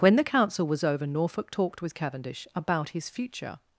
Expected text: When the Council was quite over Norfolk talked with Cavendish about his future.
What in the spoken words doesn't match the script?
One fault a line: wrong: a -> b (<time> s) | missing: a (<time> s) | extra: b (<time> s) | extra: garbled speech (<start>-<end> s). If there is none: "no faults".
missing: quite (0.8 s)